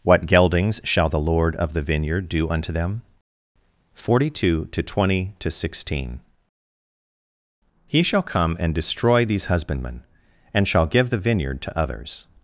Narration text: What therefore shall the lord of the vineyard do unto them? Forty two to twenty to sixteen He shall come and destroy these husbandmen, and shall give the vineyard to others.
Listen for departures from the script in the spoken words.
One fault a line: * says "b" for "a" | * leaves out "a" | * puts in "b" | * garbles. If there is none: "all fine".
* says "geldings" for "therefore"